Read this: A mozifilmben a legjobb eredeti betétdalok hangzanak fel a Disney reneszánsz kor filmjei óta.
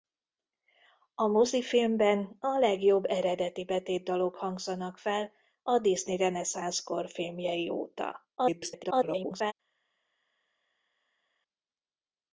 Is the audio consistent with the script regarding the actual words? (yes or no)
no